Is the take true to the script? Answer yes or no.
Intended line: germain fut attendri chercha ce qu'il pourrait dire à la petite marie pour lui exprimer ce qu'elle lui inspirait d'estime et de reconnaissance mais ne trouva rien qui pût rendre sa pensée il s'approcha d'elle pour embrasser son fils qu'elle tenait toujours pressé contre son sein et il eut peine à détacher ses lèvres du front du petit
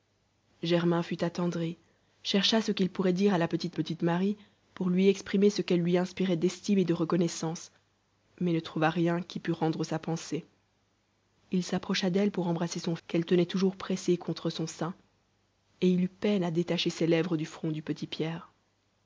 no